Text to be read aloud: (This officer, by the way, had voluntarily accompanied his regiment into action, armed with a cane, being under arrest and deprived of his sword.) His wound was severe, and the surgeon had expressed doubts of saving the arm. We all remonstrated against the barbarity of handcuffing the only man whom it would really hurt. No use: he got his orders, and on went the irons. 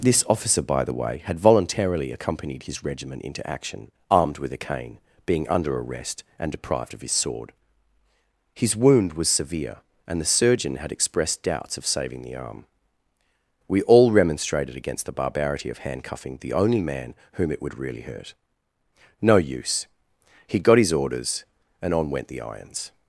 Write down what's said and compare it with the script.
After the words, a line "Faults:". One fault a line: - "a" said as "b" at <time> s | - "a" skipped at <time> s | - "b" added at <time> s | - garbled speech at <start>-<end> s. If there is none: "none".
(This officer, by the way, had voluntarily accompanied his regiment into action, armed with a cane, being under arrest and deprived of his sword.) His wound was severe, and the surgeon had expressed doubts of saving the arm. We all remonstrated against the barbarity of handcuffing the only man whom it would really hurt. No use: he got his orders, and on went the irons.
Faults:
none